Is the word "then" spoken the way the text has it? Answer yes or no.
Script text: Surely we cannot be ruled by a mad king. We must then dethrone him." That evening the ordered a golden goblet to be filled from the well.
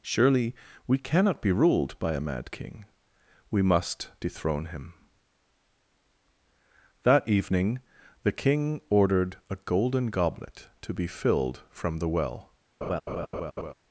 no